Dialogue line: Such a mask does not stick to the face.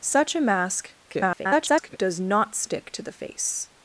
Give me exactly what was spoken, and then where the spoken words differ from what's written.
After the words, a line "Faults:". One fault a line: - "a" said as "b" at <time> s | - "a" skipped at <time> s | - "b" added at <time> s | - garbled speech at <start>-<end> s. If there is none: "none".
Such a mask [garbled] does not stick to the face.
Faults:
- garbled speech at 1.1-2.0 s